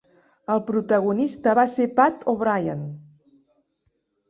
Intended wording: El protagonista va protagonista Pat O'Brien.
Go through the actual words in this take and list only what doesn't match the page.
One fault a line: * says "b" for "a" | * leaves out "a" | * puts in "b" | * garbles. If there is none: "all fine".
* says "ser" for "protagonista"